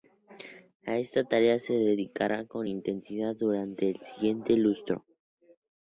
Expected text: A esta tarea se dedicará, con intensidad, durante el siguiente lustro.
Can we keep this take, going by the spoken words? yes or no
yes